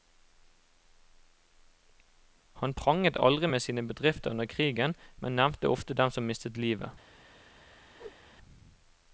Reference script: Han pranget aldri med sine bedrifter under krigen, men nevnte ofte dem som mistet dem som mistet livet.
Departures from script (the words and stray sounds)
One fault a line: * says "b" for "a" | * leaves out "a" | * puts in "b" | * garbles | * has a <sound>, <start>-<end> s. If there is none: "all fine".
* leaves out "dem som mistet"
* has a whoosh, 7.9-8.2 s